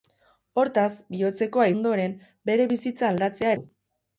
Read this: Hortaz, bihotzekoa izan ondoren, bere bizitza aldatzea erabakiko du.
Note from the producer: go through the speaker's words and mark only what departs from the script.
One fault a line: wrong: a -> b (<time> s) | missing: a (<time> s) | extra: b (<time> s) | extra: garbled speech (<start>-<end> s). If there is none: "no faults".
missing: izan (1.7 s)
missing: erabakiko (3.6 s)